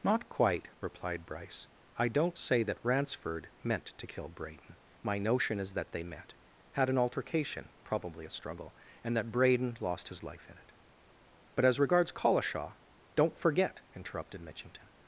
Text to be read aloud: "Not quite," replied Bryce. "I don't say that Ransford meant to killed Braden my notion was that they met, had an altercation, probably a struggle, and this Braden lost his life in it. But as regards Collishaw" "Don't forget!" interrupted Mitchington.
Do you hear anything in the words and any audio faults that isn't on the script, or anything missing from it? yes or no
yes